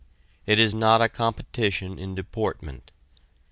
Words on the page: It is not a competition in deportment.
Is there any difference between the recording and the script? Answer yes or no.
no